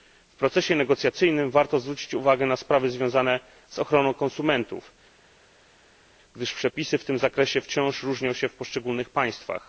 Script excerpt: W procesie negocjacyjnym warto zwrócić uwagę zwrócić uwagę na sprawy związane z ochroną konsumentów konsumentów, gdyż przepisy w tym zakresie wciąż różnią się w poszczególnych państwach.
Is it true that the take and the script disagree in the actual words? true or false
true